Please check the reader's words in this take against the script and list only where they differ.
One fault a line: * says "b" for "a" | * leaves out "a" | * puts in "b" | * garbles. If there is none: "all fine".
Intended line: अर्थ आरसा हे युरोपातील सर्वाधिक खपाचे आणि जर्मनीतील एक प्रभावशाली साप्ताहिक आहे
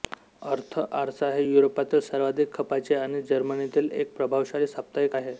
all fine